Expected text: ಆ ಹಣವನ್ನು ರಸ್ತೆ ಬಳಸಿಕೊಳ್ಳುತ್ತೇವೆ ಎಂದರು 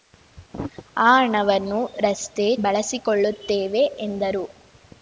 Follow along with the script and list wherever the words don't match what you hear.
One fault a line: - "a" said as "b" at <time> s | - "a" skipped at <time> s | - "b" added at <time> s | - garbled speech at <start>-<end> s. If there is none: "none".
none